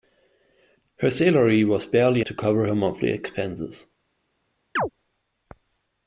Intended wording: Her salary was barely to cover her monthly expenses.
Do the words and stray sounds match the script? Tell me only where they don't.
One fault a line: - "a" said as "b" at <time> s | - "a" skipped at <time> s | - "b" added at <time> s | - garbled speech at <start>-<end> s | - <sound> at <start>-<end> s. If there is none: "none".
- chirp at 4.8-4.9 s